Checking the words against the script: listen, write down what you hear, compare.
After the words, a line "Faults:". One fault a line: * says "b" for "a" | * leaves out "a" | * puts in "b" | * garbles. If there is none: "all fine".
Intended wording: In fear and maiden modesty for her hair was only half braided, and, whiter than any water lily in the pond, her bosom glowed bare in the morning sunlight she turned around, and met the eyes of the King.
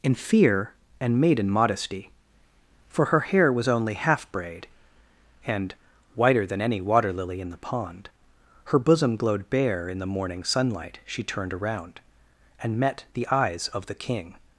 In fear and maiden modesty for her hair was only half braid, and, whiter than any water lily in the pond, her bosom glowed bare in the morning sunlight she turned around, and met the eyes of the King.
Faults:
* says "braid" for "braided"